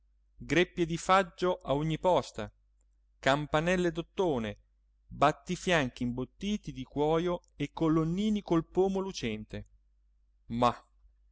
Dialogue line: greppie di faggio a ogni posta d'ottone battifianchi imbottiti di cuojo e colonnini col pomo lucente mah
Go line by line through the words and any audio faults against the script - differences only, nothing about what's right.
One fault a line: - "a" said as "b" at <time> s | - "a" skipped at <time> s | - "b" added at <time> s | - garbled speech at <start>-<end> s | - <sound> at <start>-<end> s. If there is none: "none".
- "campanelle" added at 3.2 s